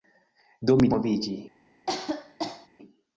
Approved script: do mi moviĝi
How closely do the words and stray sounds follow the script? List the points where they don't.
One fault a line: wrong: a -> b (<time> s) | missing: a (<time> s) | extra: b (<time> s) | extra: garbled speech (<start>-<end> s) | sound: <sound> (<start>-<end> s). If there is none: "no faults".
sound: cough (1.9-2.7 s)